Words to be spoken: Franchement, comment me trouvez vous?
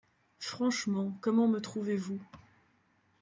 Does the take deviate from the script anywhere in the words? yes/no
no